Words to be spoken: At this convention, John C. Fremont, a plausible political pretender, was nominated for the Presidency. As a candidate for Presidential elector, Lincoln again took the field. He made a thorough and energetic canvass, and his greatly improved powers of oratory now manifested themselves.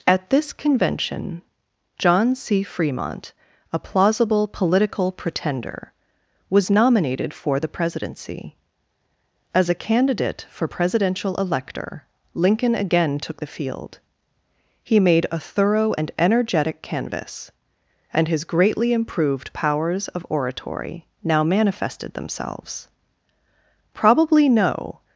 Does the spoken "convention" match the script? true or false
true